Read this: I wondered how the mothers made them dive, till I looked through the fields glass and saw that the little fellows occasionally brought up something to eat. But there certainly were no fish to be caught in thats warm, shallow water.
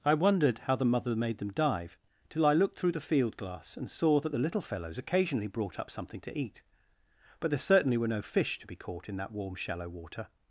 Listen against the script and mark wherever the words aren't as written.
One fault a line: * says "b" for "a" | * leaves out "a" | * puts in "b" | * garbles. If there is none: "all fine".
* says "mother" for "mothers"
* says "field" for "fields"
* says "that" for "thats"